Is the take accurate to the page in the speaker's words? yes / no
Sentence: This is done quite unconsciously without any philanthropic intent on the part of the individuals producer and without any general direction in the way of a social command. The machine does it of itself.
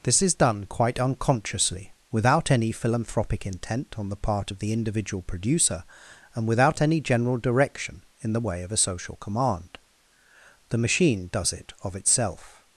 no